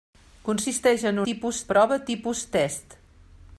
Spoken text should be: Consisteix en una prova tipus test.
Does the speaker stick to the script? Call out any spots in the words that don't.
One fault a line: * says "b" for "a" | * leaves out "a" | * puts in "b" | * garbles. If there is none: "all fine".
* says "tipus" for "una"